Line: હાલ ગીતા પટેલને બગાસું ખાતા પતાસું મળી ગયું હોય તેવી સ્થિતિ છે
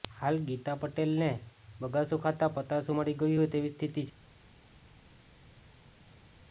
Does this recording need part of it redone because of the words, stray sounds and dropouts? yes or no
no